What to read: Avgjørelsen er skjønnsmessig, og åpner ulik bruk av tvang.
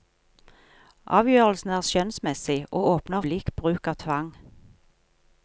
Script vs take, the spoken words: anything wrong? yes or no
no